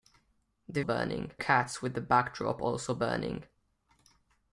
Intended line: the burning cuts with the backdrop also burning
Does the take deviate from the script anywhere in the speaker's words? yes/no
no